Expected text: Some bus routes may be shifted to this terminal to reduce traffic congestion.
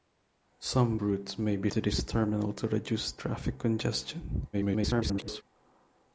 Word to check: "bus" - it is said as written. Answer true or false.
false